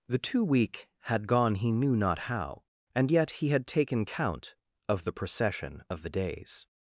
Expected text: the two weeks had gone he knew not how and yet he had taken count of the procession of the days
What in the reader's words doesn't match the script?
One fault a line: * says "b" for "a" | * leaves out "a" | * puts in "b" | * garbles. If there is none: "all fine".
* says "week" for "weeks"